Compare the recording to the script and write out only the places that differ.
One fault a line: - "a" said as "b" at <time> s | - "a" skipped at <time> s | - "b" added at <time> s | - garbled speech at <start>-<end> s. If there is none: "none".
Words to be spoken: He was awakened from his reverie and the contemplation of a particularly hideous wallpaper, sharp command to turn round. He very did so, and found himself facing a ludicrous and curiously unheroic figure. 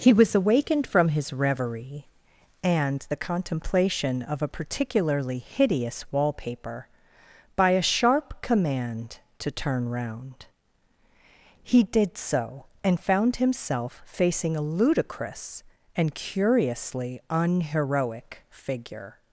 - "by a" added at 7.6 s
- "very" skipped at 11.8 s